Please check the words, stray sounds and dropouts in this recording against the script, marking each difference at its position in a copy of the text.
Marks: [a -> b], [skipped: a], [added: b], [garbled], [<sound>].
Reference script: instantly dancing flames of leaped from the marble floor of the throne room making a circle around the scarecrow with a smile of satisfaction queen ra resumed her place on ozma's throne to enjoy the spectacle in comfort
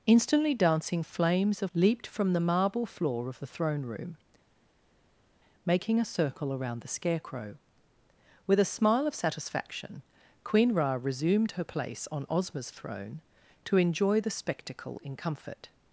instantly dancing flames of leaped from the marble floor of the throne room making a circle around the scarecrow with a smile of satisfaction queen ra resumed her place on ozma's throne to enjoy the spectacle in comfort